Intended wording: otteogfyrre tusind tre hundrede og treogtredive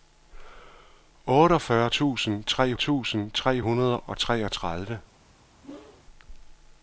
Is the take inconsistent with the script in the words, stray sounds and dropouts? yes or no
yes